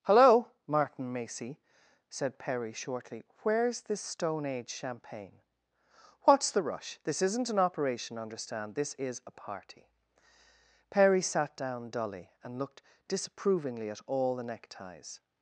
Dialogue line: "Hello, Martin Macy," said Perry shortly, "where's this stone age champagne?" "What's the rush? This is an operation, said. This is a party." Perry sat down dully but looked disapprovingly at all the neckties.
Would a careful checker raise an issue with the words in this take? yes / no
yes